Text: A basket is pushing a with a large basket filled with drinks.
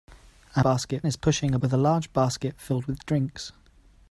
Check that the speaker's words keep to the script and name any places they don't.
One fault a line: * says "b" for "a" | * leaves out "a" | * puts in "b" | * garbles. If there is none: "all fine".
all fine